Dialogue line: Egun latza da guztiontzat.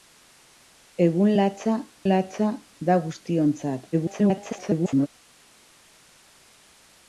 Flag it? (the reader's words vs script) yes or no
yes